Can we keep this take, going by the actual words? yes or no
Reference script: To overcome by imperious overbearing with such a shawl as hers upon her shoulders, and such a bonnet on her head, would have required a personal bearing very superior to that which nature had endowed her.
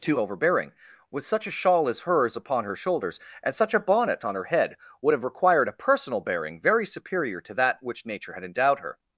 no